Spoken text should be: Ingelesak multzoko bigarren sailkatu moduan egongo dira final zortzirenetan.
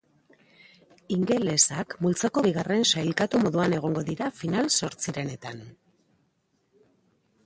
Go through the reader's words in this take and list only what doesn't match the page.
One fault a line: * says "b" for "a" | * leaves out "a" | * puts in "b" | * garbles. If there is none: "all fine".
all fine